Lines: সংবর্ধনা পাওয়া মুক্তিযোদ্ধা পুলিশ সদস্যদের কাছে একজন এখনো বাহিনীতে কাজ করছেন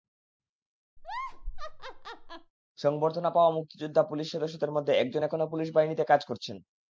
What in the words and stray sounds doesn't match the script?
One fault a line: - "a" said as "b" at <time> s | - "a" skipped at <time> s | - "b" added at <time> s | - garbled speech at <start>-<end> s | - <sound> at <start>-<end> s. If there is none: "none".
- laugh at 1.0-2.5 s
- "কাছে" said as "মধ্যে" at 4.7 s
- "পুলিশ" added at 5.5 s